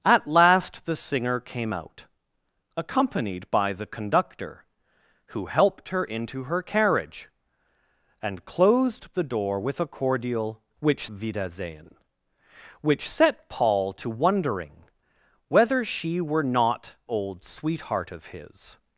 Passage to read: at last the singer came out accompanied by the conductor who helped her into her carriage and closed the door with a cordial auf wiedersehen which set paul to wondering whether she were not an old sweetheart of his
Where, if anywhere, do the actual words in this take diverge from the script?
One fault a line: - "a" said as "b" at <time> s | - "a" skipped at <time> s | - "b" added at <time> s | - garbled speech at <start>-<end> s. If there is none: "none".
- "auf" said as "which" at 10.8 s
- "an" skipped at 16.9 s